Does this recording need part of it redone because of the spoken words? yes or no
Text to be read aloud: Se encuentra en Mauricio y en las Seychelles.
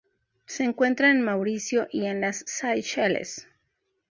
no